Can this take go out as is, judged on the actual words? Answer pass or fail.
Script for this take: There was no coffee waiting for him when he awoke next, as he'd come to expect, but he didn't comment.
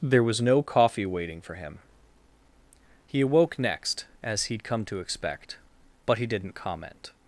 fail